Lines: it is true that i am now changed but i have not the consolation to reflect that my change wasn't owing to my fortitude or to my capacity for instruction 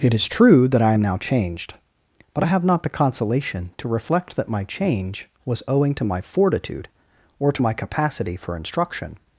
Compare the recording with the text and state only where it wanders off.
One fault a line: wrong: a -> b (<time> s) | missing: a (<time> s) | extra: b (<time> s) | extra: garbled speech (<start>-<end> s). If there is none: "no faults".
wrong: wasn't -> was (5.4 s)